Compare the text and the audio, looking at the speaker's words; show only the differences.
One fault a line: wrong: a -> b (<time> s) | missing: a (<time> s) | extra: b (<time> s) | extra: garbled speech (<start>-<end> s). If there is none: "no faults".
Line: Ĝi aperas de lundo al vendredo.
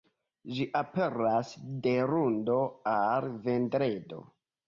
no faults